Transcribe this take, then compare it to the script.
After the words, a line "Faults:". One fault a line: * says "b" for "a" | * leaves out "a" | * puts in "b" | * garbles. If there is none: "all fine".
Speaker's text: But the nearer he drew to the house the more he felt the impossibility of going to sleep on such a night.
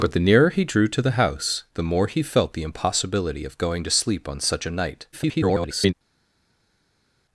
But the nearer he drew to the house the more he felt the impossibility of going to sleep on such a night. [garbled]
Faults:
* garbles